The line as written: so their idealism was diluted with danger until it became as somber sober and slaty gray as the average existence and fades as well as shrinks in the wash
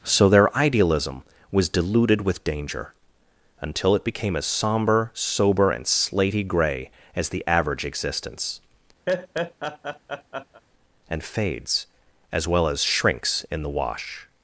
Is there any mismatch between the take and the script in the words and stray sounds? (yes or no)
yes